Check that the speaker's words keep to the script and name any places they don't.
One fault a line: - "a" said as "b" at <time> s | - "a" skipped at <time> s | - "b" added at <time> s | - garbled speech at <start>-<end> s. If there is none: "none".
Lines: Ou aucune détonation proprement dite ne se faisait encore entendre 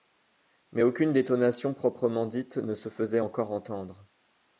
- "Ou" said as "Mais" at 0.7 s